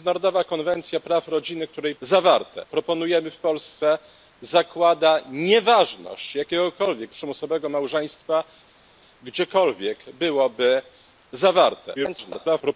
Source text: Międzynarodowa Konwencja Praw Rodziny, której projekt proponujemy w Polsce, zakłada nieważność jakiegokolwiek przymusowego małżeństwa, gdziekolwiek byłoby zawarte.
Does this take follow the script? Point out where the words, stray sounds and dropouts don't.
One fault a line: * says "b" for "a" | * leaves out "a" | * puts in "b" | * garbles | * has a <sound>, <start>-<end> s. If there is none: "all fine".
* says "zawarte" for "projekt"
* garbles